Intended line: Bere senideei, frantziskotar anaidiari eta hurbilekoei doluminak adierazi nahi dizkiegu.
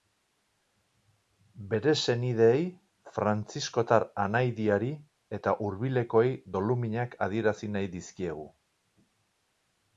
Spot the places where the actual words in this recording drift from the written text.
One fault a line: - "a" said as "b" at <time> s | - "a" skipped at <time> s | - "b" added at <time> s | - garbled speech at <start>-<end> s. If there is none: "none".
none